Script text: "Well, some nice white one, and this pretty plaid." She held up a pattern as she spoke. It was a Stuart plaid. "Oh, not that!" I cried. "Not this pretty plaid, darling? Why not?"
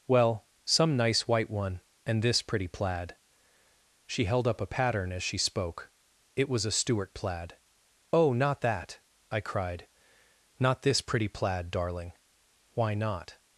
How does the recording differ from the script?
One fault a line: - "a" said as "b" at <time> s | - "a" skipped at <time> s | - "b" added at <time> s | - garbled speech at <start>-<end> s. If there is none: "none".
none